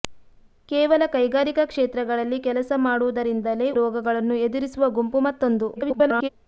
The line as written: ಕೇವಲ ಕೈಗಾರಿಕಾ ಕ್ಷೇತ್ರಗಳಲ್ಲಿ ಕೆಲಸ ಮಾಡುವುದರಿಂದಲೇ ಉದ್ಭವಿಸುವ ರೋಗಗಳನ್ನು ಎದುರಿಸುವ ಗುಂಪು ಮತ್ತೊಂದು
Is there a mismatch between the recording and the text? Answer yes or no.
yes